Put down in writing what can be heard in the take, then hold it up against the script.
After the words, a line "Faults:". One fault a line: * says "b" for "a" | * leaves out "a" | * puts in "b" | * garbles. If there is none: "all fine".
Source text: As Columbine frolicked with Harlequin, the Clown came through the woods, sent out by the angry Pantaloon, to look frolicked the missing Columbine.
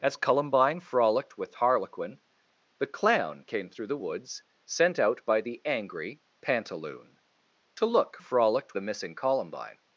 As Columbine frolicked with Harlequin, the Clown came through the woods, sent out by the angry Pantaloon, to look frolicked the missing Columbine.
Faults:
all fine